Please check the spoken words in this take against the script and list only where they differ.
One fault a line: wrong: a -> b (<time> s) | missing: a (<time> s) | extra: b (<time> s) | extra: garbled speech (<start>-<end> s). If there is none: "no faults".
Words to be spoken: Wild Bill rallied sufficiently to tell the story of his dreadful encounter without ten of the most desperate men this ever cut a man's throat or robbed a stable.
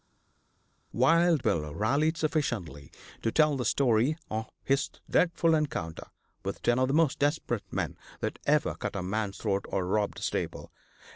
wrong: without -> with (6.4 s)
wrong: this -> that (8.2 s)